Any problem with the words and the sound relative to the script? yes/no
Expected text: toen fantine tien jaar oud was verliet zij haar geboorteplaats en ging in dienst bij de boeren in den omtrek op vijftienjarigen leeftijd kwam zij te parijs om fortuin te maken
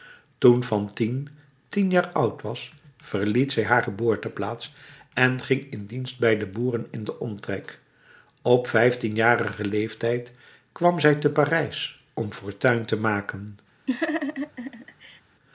yes